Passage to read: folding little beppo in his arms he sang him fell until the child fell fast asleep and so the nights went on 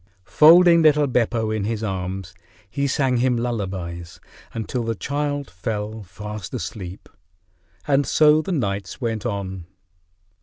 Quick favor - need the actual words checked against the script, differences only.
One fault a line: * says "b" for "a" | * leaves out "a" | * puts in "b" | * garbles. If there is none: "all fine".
* says "lullabies" for "fell"